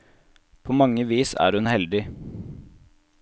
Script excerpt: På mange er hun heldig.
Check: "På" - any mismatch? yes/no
no